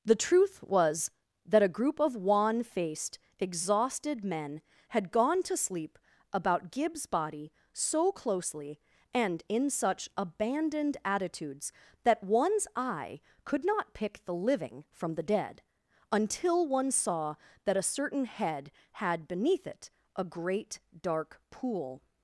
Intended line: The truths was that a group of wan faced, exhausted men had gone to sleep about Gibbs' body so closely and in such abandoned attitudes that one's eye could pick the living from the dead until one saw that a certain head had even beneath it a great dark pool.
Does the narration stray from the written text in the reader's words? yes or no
yes